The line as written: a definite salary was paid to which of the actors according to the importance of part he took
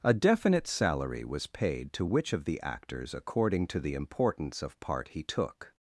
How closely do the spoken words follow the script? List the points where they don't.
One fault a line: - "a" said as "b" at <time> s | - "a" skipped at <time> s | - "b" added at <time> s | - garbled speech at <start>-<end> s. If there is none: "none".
none